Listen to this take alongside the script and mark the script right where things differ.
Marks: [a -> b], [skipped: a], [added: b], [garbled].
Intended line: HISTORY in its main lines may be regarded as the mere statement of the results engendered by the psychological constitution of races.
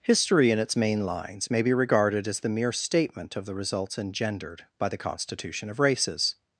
HISTORY in its main lines may be regarded as the mere statement of the results engendered by the [skipped: psychological] constitution of races.